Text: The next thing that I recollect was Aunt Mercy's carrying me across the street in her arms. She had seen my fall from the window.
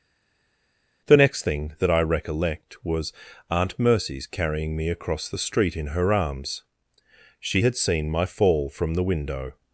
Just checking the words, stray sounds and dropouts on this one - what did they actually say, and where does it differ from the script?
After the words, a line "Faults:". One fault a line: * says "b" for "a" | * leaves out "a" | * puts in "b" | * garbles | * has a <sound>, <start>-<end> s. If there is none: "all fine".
The next thing that I recollect was Aunt Mercy's carrying me across the street in her arms. She had seen my fall from the window.
Faults:
all fine